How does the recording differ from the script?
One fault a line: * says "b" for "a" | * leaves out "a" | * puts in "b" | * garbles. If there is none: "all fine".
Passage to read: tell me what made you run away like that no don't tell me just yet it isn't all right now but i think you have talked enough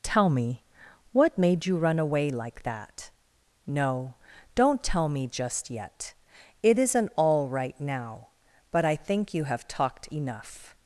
all fine